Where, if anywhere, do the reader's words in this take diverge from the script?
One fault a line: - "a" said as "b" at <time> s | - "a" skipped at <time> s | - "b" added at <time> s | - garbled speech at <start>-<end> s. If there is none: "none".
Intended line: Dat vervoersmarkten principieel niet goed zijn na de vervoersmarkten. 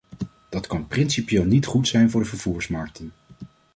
- "vervoersmarkten" said as "kan" at 0.7 s
- "na" said as "voor" at 2.1 s